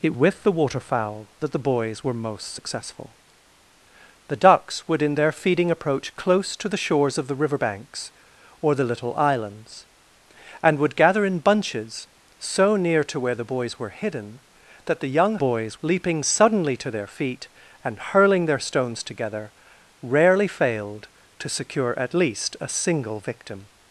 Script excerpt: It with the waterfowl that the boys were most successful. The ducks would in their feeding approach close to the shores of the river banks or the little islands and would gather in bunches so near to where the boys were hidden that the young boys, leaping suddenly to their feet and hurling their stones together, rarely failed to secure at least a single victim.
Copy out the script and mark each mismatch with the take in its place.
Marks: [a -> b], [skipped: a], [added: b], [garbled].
It with the waterfowl that the boys were most successful. The ducks would in their feeding approach close to the shores of the river banks or the little islands and would gather in bunches so near to where the boys were hidden that the young boys, leaping suddenly to their feet and hurling their stones together, rarely failed to secure at least a single victim.